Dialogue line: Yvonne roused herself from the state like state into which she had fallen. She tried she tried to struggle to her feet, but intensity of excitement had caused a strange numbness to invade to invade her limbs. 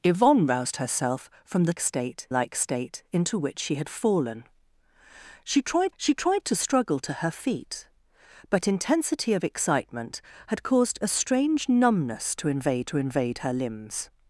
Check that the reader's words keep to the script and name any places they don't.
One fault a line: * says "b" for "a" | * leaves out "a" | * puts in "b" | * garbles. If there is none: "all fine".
all fine